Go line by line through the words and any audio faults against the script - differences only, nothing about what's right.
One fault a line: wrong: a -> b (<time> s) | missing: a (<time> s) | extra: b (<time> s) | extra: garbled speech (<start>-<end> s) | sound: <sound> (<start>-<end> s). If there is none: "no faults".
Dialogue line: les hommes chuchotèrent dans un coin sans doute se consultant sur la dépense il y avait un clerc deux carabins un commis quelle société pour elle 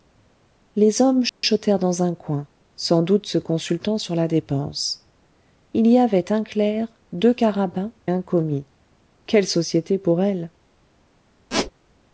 sound: dropout (1.3-1.4 s)
sound: squeak (11.5-11.7 s)